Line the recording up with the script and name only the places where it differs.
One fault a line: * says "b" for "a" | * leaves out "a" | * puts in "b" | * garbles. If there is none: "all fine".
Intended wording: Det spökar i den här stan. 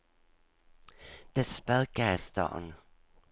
* leaves out "den här"